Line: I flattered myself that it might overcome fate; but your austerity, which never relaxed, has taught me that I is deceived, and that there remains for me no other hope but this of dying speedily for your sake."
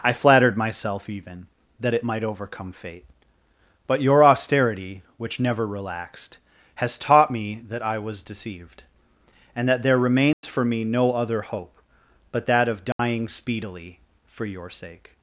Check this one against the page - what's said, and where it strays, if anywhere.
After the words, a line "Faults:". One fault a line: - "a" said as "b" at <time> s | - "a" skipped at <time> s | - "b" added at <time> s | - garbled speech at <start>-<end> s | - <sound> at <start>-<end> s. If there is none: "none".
I flattered myself even that it might overcome fate; but your austerity, which never relaxed, has taught me that I was deceived, and that there remains for me no other hope but that of dying speedily for your sake."
Faults:
- "even" added at 1.1 s
- "is" said as "was" at 8.0 s
- dropout at 10.3-10.4 s
- "this" said as "that" at 12.5 s
- dropout at 12.9-13.0 s